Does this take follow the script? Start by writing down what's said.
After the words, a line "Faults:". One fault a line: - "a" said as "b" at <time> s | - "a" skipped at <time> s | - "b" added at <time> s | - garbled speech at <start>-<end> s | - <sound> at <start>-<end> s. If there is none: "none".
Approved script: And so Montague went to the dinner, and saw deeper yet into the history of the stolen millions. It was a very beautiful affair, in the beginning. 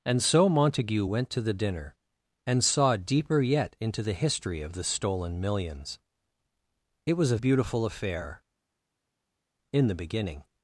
And so Montague went to the dinner, and saw deeper yet into the history of the stolen millions. It was a beautiful affair, in the beginning.
Faults:
- "very" skipped at 7.4 s